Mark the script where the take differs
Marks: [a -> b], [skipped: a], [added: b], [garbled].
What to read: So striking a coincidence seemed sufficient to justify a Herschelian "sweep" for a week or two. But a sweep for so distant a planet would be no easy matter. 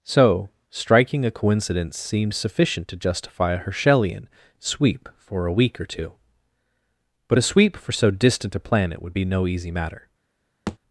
So striking a coincidence seemed sufficient to justify a Herschelian "sweep" for a week or two. But a sweep for so distant a planet would be no easy matter.